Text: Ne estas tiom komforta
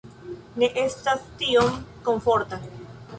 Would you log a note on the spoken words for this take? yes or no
no